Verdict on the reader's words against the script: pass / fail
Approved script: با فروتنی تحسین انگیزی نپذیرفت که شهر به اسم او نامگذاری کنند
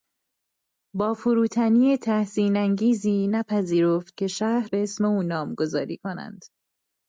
pass